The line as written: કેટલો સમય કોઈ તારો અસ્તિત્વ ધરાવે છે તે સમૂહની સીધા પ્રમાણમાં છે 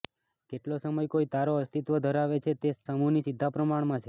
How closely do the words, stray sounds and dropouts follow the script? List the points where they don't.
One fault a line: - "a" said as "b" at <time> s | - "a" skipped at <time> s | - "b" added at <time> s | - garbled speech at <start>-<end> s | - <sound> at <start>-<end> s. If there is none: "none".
none